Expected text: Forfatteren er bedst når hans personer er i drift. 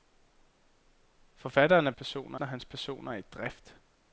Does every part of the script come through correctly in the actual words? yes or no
no